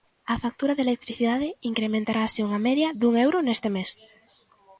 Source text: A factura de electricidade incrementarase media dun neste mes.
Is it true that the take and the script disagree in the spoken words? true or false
true